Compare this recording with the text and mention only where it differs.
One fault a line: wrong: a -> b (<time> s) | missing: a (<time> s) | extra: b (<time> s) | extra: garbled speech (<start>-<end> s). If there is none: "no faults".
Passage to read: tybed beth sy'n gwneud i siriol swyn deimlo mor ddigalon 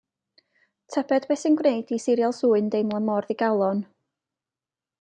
no faults